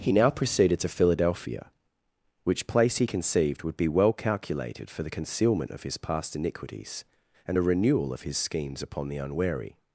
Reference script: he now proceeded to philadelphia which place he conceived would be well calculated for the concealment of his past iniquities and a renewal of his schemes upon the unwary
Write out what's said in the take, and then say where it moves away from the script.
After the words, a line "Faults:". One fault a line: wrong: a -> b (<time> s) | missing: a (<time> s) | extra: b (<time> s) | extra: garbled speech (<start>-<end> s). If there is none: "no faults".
he now proceeded to philadelphia which place he conceived would be well calculated for the concealment of his past iniquities and a renewal of his schemes upon the unwary
Faults:
no faults